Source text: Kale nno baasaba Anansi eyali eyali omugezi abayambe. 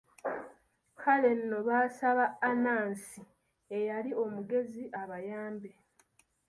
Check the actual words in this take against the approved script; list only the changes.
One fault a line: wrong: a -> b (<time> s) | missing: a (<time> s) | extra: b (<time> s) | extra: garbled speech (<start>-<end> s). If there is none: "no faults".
missing: eyali (4.1 s)